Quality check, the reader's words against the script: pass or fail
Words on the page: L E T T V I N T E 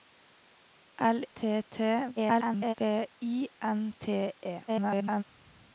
fail